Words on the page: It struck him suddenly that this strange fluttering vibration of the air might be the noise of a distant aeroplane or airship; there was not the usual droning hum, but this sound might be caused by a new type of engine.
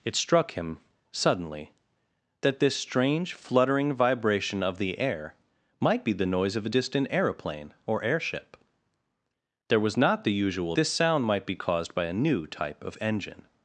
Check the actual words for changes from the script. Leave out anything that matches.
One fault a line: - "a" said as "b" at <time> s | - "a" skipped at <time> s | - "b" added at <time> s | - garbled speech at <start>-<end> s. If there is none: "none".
- "droning hum but" skipped at 10.8 s